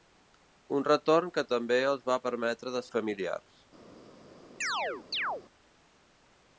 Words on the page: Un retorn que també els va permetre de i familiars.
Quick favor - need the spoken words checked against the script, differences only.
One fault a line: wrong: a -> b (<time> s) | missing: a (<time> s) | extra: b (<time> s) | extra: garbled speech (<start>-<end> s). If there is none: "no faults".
no faults